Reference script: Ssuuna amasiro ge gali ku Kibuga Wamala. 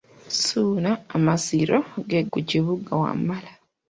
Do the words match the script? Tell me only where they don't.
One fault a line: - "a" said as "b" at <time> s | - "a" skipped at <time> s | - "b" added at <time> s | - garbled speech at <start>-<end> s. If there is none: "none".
- "gali" skipped at 2.2 s